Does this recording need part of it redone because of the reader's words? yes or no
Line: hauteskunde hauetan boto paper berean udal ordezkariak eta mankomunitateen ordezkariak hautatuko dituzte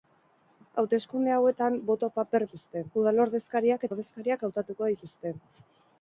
yes